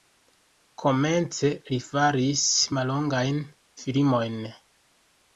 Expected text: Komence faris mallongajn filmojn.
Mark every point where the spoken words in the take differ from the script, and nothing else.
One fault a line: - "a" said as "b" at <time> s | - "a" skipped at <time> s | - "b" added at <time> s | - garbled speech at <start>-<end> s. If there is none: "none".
- "li" added at 1.7 s